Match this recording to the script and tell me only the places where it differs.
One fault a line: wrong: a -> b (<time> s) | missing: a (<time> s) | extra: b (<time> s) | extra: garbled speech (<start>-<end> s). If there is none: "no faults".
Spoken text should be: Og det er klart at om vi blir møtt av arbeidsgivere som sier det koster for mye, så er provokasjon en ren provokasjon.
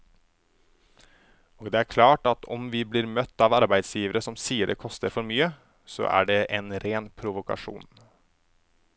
wrong: provokasjon -> det (6.3 s)